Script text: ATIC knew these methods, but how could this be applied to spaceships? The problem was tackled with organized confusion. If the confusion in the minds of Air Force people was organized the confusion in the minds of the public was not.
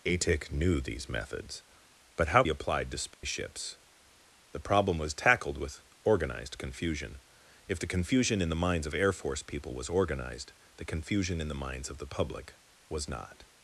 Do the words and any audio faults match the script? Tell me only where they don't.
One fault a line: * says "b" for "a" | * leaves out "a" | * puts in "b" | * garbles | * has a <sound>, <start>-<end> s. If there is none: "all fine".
* leaves out "could this be"
* has a dropout, 3.1-3.2 s